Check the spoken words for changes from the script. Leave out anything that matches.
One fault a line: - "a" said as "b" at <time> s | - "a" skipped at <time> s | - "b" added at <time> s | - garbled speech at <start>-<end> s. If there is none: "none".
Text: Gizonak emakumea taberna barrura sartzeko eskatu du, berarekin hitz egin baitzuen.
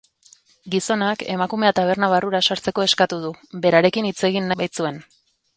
none